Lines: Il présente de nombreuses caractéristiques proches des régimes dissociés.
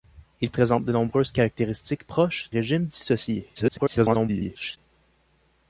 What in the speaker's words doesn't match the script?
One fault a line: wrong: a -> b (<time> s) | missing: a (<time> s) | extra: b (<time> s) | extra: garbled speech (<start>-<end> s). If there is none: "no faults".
missing: des (2.5 s)
extra: garbled speech (3.5-4.8 s)